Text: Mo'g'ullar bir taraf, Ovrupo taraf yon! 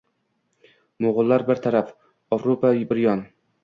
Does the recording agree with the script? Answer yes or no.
no